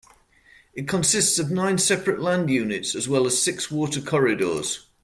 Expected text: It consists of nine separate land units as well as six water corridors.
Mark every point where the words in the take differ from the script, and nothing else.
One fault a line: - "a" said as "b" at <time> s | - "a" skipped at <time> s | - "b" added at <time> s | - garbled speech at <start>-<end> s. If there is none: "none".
none